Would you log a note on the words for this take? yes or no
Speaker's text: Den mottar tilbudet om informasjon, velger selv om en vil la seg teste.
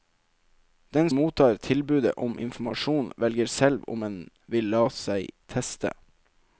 no